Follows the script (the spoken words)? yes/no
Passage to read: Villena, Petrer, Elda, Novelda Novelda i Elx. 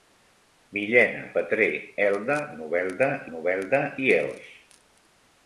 yes